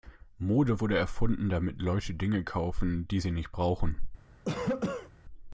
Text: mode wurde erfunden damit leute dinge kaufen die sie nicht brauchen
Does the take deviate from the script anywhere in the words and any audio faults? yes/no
yes